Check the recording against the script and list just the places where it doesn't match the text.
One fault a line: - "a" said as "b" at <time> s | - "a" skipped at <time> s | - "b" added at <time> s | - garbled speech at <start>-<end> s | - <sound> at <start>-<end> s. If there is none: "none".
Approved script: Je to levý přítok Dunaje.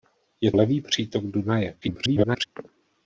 - "to" skipped at 0.5 s
- garbled speech at 1.8-2.5 s